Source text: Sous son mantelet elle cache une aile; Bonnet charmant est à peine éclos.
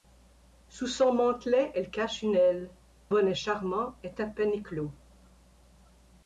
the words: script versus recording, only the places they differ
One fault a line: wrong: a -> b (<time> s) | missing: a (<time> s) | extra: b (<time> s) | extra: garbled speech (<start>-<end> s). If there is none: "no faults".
no faults